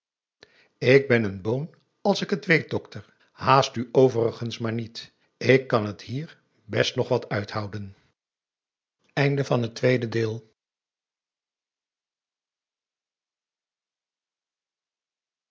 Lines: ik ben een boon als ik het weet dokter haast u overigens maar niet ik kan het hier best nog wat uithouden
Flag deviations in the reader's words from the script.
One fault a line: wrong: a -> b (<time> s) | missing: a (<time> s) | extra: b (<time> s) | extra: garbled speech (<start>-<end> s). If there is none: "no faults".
no faults